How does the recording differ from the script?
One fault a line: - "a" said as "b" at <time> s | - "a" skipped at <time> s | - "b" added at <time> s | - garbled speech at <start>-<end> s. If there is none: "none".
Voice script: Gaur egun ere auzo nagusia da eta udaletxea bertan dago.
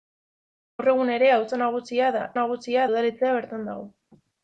- "eta" said as "nagusia" at 2.4 s